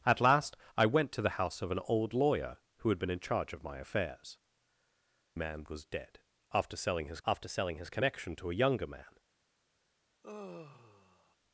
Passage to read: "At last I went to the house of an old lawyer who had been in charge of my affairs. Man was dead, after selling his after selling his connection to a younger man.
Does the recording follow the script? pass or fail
pass